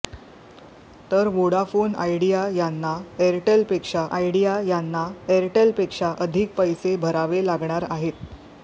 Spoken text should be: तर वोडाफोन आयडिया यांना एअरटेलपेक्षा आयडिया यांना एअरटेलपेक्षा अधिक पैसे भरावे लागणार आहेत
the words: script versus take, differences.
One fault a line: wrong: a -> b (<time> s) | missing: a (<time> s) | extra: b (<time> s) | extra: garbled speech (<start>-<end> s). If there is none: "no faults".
no faults